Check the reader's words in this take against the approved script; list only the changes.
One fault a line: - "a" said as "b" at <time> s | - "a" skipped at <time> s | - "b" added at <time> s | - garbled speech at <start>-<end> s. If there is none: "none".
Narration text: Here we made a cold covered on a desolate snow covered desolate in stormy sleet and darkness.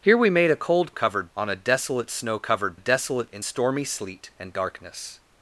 none